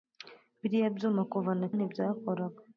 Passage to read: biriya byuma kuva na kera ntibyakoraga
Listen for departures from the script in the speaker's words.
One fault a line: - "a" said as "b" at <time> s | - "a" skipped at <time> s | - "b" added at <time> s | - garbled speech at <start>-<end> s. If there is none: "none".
- "kera" skipped at 1.7 s